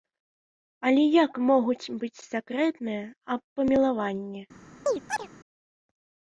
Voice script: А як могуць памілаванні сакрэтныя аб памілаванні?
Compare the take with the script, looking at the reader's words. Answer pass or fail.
fail